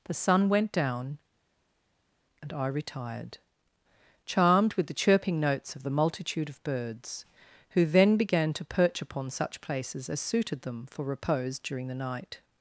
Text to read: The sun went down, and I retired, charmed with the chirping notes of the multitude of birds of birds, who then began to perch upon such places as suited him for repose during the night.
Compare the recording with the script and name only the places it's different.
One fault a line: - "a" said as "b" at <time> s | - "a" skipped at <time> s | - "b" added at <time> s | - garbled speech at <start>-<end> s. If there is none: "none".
- "of birds" skipped at 7.2 s
- "him" said as "them" at 10.6 s